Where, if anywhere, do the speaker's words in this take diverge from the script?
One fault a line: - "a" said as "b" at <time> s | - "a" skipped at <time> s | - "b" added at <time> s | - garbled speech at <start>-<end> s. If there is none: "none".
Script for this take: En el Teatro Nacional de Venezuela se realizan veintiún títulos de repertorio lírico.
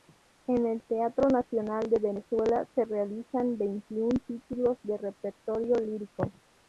none